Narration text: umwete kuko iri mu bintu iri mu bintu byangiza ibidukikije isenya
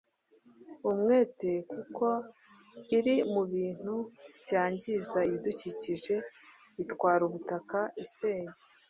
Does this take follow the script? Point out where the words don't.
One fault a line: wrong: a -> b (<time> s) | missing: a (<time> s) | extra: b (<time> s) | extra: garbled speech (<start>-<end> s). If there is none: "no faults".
wrong: iri mu bintu byangiza ibidukikije -> byangiza ibidukikije itwara ubutaka (4.4 s)